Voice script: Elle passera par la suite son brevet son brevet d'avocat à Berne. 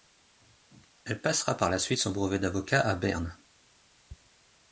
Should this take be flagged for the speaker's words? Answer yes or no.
yes